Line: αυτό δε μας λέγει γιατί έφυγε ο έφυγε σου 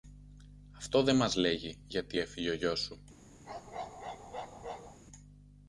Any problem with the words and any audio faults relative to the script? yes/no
yes